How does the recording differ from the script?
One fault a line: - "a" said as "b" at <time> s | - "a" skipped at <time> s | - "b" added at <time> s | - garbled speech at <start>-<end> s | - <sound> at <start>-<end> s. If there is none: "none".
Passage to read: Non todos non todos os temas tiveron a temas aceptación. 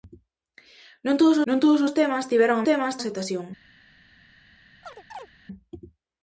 - chirp at 4.8-5.3 s